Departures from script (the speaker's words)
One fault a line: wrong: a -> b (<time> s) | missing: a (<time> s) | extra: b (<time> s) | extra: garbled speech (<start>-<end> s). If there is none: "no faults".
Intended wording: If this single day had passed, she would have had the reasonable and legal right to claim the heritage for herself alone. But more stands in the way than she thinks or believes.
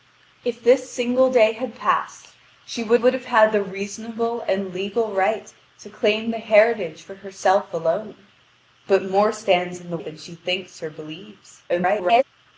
extra: would (2.9 s)
missing: way (10.0 s)
extra: garbled speech (11.7-12.2 s)